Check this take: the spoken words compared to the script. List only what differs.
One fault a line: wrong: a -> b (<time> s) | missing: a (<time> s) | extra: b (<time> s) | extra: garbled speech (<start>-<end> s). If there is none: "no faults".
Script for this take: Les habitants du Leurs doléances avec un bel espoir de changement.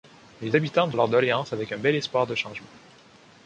no faults